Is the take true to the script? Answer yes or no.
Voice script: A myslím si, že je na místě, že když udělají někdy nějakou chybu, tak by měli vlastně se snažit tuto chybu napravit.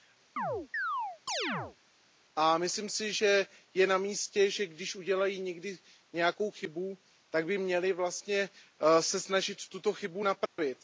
yes